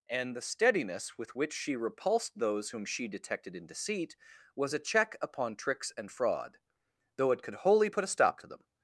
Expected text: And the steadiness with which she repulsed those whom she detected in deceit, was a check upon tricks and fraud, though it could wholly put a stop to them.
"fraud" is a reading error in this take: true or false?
false